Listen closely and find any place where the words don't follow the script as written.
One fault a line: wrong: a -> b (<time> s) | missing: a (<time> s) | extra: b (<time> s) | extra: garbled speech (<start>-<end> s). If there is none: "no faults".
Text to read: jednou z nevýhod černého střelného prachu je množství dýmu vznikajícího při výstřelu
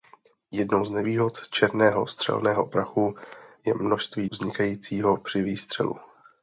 missing: dýmu (4.3 s)